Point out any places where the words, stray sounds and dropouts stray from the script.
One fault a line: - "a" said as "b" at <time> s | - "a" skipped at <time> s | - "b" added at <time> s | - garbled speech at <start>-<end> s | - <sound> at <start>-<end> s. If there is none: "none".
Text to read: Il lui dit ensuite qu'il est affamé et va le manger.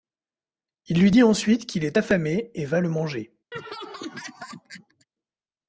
- laugh at 3.5-5.1 s